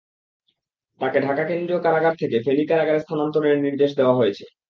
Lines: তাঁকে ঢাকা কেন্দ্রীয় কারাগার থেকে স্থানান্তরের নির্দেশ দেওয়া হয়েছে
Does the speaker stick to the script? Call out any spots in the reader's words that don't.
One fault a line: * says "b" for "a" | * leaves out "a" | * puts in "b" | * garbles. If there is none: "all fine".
* puts in "ফেনী কারাগারে"